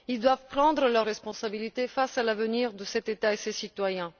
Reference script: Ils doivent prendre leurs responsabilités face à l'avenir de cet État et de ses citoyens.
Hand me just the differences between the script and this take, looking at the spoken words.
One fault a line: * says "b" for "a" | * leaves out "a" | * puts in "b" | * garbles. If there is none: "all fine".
all fine